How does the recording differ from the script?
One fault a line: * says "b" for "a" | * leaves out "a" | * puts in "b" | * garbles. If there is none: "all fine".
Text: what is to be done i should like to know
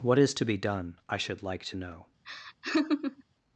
all fine